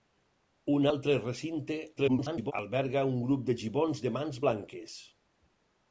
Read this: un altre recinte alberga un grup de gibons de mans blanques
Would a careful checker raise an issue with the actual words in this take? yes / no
yes